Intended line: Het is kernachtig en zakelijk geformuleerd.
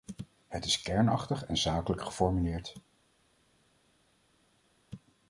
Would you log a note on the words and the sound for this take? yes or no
no